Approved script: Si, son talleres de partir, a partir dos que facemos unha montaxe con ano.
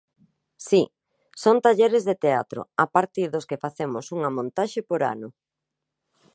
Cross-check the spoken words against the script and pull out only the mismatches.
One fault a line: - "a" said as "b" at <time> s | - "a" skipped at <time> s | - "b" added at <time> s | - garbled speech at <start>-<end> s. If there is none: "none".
- "partir" said as "teatro" at 2.2 s
- "con" said as "por" at 4.9 s